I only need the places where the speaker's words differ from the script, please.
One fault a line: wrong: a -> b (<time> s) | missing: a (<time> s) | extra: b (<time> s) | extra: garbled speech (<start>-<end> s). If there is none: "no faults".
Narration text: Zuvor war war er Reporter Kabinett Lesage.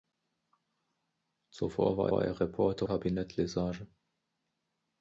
no faults